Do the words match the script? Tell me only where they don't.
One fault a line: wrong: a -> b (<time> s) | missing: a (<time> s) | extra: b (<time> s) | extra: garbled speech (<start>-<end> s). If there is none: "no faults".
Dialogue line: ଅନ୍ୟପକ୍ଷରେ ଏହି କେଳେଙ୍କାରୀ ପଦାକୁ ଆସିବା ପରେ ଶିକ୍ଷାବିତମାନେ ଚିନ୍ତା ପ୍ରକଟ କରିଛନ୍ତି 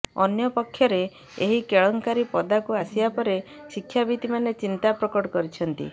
no faults